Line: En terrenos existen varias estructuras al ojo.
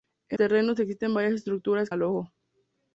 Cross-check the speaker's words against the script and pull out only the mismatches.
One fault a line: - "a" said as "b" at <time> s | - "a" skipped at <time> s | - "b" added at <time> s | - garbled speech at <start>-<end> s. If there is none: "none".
none